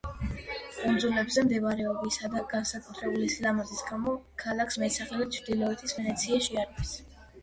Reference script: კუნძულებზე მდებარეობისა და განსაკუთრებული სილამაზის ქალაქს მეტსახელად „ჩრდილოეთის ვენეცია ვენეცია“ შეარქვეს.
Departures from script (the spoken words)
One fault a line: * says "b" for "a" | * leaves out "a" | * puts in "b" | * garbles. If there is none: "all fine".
* puts in "გამო"
* leaves out "ვენეცია"